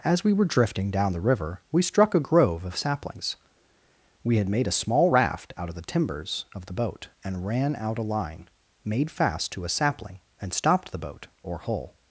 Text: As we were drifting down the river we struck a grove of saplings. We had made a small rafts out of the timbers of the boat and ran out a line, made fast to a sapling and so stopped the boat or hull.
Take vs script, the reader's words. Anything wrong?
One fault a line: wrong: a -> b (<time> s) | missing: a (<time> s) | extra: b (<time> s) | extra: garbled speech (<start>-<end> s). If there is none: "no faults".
wrong: rafts -> raft (5.1 s)
missing: so (10.5 s)